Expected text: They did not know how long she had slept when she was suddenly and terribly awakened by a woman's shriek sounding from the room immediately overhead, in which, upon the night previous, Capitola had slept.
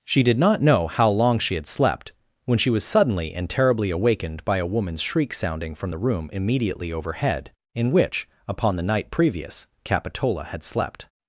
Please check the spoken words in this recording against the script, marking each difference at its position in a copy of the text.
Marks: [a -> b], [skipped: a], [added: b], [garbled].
[They -> She] did not know how long she had slept when she was suddenly and terribly awakened by a woman's shriek sounding from the room immediately overhead, in which, upon the night previous, Capitola had slept.